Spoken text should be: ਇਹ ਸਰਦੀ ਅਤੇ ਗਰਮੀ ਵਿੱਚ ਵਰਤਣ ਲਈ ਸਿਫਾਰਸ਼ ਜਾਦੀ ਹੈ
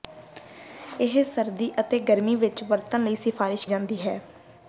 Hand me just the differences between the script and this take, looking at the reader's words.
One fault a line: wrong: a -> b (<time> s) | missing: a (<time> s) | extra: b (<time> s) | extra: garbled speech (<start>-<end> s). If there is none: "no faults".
no faults